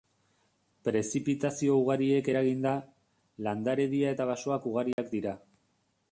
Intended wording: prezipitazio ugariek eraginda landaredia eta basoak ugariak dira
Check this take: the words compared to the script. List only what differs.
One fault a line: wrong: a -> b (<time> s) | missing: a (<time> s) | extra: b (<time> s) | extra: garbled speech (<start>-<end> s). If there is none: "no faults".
no faults